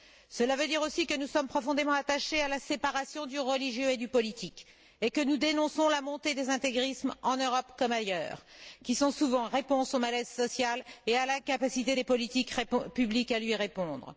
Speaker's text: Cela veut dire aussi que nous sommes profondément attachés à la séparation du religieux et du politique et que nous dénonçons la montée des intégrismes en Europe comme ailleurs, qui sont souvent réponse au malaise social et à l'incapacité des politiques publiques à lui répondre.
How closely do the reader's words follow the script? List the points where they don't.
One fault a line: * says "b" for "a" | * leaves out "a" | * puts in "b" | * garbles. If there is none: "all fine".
all fine